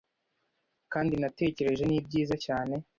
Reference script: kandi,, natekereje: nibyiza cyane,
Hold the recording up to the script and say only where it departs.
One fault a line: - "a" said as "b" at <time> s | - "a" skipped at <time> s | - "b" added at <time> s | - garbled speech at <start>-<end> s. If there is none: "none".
none